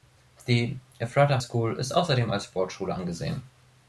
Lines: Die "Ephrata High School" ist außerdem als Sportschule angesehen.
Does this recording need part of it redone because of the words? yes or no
yes